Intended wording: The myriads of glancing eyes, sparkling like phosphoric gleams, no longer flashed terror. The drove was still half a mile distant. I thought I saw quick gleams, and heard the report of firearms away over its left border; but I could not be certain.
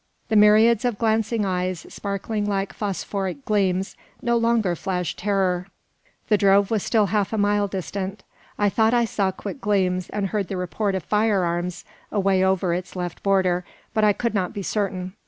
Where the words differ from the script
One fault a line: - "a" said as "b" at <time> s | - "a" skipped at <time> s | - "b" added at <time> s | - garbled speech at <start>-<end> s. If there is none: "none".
none